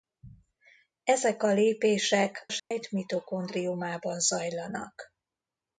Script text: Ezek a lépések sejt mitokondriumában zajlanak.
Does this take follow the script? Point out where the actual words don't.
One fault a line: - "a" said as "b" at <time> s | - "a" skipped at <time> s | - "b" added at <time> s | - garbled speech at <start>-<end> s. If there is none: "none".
none